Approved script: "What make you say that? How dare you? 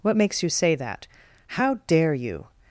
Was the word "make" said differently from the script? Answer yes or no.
yes